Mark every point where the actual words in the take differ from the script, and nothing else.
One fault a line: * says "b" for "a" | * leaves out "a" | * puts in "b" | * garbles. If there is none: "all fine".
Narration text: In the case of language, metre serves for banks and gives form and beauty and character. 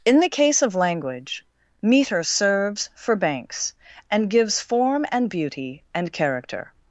all fine